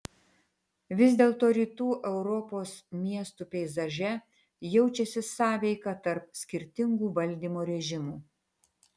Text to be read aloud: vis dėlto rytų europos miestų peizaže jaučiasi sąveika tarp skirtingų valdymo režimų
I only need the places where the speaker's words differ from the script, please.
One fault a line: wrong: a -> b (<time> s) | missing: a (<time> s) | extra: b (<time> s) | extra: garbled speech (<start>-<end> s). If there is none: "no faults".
no faults